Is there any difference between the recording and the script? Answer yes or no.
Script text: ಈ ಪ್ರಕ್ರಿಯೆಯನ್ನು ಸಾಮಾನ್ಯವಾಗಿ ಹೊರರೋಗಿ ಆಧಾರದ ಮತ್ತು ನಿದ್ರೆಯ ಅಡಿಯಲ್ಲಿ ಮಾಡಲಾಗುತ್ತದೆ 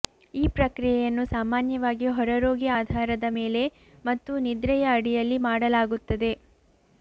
yes